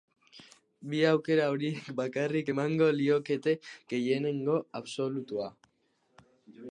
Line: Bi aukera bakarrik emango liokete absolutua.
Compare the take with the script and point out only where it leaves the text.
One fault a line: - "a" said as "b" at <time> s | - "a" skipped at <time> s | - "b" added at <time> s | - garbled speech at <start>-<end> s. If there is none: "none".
- "horiek" added at 1.6 s
- "gehiengo" added at 3.9 s